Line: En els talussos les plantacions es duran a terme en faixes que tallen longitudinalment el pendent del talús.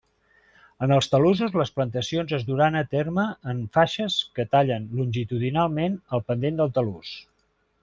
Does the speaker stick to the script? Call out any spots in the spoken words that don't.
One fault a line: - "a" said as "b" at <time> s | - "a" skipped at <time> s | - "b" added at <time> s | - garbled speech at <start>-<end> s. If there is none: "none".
none